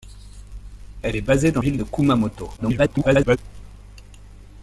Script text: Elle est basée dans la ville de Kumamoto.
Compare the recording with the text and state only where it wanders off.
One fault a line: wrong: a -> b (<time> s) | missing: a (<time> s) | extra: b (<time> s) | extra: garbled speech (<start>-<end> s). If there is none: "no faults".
missing: la (1.6 s)
extra: garbled speech (2.6-3.4 s)